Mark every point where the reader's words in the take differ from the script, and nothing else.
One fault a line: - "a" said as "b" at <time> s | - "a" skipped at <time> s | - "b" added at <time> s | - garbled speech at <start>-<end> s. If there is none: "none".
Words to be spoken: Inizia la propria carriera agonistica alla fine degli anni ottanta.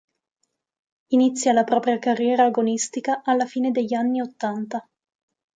none